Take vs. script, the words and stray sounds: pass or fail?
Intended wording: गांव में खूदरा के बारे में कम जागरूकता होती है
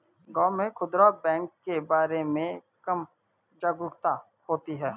fail